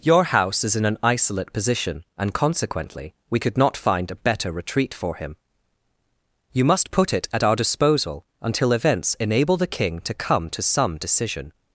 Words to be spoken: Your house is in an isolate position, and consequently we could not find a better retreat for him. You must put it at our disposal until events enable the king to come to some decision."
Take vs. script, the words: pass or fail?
pass